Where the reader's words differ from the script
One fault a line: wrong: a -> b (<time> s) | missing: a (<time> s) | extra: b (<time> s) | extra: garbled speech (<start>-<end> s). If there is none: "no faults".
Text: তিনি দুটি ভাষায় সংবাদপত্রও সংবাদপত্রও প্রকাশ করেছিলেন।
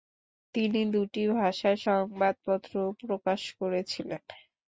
missing: সংবাদপত্রও (2.9 s)